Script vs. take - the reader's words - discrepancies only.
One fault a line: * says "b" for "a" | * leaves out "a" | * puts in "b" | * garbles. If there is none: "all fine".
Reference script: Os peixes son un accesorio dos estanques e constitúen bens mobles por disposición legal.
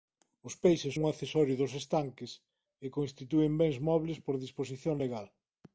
* leaves out "son"